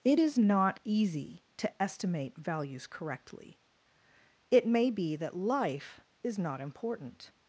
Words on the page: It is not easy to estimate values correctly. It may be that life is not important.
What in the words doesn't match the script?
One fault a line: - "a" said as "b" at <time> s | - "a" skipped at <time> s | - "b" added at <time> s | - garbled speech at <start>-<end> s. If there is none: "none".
none